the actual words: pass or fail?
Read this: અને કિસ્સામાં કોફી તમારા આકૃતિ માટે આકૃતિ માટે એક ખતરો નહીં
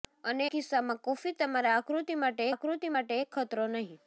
pass